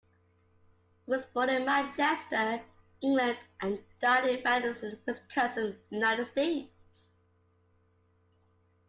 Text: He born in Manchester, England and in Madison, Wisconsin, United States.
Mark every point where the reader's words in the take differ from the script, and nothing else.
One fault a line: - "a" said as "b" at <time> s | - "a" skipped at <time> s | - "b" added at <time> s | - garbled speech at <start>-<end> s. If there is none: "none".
- "was" added at 1.1 s
- "died" added at 4.0 s